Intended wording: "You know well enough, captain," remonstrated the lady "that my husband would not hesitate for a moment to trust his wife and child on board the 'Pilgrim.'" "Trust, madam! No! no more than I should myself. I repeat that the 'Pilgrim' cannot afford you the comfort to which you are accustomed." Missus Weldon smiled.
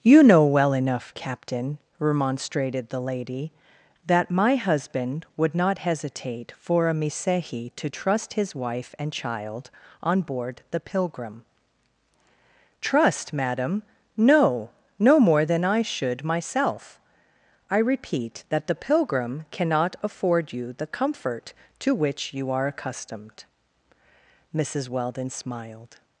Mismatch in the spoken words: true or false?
true